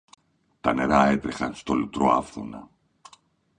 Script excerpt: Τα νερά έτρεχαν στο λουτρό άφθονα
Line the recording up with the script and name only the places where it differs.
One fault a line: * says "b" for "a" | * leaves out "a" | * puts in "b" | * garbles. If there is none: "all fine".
all fine